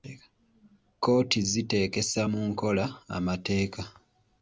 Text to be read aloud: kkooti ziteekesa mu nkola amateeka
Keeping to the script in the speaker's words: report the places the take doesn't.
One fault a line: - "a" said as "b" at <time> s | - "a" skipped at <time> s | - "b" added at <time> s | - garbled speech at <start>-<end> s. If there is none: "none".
none